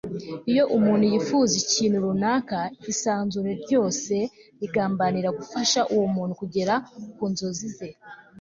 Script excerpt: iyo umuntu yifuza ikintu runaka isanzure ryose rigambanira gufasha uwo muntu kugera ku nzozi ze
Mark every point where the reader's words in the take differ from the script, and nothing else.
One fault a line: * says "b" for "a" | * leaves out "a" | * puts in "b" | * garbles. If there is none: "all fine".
all fine